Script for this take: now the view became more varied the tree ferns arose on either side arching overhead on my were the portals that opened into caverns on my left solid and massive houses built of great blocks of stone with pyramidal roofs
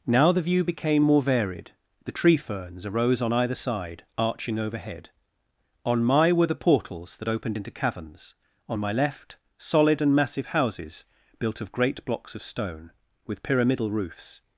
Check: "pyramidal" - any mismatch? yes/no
no